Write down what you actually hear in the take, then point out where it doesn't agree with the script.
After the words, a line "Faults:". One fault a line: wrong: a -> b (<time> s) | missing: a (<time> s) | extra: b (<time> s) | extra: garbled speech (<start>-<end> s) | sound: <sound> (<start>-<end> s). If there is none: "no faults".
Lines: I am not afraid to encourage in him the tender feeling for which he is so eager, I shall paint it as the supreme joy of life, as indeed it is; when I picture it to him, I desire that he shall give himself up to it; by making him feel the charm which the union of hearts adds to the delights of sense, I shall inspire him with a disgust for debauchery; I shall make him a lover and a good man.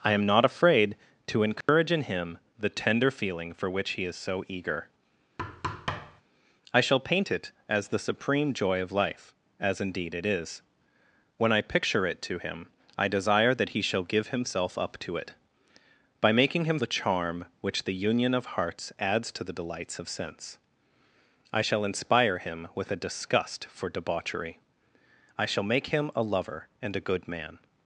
I am not afraid to encourage in him the tender feeling for which he is so eager, I shall paint it as the supreme joy of life, as indeed it is; when I picture it to him, I desire that he shall give himself up to it; by making him the charm which the union of hearts adds to the delights of sense, I shall inspire him with a disgust for debauchery; I shall make him a lover and a good man.
Faults:
sound: dropout (1.6-1.7 s)
sound: thud (5.4-6.2 s)
missing: feel (16.8 s)